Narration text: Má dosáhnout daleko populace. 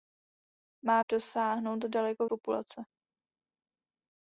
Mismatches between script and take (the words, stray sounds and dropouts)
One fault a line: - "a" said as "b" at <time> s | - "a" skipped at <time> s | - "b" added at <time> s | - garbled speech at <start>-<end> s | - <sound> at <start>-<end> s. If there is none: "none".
none